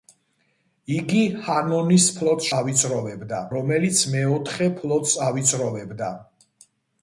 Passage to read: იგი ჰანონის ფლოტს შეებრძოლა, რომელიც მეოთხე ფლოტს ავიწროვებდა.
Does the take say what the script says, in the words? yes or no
no